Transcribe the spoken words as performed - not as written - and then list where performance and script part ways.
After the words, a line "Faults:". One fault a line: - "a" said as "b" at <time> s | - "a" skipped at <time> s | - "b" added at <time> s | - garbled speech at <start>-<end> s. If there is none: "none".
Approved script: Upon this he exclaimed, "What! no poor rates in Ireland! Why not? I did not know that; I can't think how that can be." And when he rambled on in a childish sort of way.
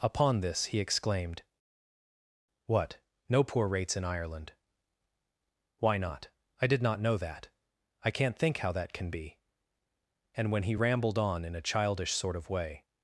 Upon this he exclaimed, "What! no poor rates in Ireland! Why not? I did not know that; I can't think how that can be." And when he rambled on in a childish sort of way.
Faults:
none